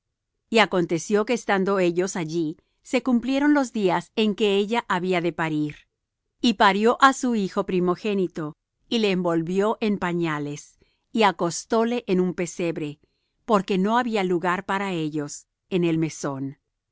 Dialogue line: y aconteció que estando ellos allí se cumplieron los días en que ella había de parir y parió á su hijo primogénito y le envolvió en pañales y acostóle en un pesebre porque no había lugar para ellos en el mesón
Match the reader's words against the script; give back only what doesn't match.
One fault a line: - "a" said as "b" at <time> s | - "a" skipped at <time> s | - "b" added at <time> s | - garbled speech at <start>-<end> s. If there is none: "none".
none